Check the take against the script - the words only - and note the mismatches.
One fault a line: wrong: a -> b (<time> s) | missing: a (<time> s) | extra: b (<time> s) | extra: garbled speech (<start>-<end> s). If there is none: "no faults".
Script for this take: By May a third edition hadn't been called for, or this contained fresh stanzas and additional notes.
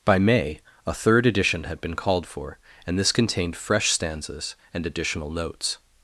wrong: hadn't -> had (1.6 s)
wrong: or -> and (2.9 s)